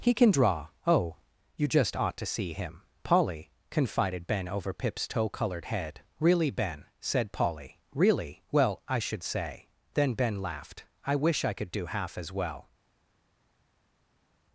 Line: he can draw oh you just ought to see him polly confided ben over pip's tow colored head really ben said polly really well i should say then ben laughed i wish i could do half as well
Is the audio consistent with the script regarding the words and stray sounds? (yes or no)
yes